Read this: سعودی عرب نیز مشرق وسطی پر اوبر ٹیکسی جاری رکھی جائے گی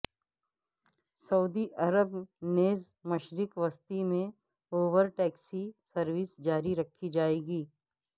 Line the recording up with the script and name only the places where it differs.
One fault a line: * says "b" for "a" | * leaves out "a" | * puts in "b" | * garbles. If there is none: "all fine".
* says "میں" for "پر"
* puts in "سروس"